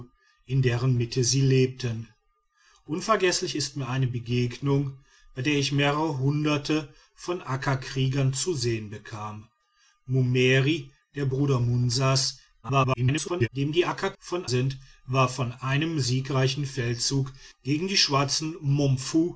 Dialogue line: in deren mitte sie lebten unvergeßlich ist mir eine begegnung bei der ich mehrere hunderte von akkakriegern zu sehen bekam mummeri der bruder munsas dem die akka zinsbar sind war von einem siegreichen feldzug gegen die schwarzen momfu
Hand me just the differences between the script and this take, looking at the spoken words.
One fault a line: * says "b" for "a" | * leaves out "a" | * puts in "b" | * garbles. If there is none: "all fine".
* garbles
* says "von" for "zinsbar"